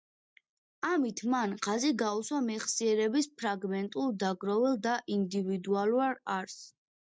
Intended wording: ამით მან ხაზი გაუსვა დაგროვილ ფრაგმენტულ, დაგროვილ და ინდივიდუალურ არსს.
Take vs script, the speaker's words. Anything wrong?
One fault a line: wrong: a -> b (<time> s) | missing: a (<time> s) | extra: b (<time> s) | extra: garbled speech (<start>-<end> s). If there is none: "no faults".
wrong: დაგროვილ -> მეხსიერების (2.5 s)